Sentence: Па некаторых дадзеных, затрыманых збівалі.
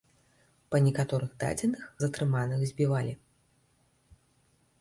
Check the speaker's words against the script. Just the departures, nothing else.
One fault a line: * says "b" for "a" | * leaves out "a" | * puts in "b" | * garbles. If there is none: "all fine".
all fine